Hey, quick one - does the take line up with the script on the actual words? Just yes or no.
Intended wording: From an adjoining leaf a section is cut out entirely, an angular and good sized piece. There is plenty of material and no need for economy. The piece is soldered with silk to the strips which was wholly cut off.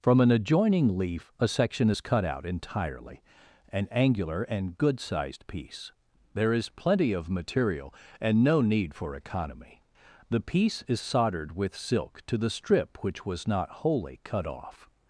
no